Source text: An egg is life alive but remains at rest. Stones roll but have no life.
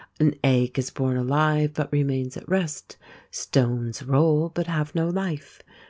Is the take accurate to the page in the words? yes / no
no